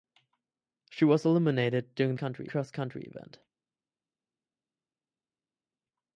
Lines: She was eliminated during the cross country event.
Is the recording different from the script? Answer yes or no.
yes